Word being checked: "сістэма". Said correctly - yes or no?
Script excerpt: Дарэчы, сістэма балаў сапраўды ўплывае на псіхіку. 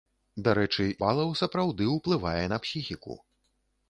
no